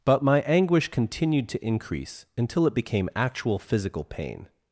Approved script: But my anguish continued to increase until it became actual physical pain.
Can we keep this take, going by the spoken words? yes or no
yes